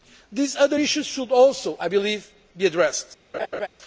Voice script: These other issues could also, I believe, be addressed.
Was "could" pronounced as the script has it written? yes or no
no